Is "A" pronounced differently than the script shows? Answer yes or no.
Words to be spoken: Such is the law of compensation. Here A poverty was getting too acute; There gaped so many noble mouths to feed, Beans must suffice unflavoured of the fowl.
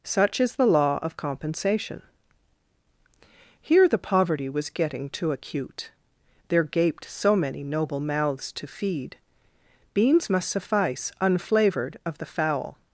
yes